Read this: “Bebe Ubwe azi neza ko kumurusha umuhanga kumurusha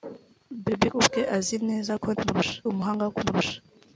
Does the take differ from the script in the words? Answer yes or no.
no